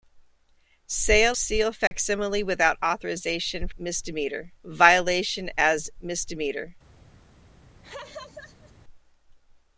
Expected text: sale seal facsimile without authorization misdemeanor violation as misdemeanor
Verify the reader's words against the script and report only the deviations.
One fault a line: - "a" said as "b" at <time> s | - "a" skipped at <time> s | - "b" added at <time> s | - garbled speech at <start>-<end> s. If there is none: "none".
none